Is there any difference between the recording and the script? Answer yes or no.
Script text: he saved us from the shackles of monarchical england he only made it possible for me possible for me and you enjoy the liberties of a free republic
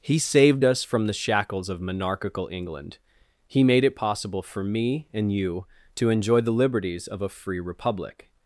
yes